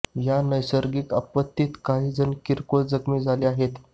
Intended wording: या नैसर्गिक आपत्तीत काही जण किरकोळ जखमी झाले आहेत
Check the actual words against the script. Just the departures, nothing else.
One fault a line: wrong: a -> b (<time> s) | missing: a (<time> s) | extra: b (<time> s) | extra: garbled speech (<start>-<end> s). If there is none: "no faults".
no faults